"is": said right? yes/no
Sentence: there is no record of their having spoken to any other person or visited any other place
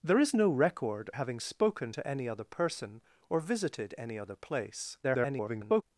yes